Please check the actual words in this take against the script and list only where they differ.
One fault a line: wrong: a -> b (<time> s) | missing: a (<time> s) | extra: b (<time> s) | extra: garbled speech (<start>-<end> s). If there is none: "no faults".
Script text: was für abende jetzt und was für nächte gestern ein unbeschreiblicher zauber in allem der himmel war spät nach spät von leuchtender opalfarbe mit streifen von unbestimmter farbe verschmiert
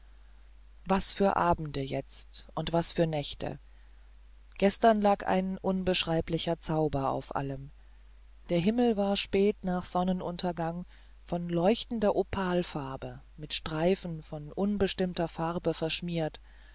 extra: lag (5.0 s)
wrong: in -> auf (7.1 s)
wrong: spät -> sonnenuntergang (9.8 s)